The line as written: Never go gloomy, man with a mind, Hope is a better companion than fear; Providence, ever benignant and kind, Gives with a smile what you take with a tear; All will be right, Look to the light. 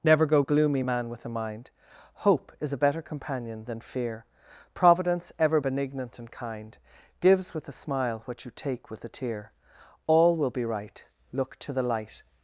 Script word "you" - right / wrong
right